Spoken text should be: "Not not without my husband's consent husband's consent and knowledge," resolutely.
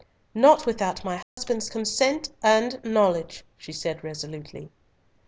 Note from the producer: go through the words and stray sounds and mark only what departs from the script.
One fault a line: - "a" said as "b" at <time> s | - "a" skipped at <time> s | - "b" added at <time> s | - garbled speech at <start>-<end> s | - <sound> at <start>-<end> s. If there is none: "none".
- "not" skipped at 0.7 s
- dropout at 1.2-1.4 s
- "husband's consent and knowledge" said as "and knowledge she said" at 2.4 s